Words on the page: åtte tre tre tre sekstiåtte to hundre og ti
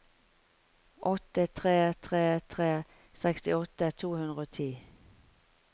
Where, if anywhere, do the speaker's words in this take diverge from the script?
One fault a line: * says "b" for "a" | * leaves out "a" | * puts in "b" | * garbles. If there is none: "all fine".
all fine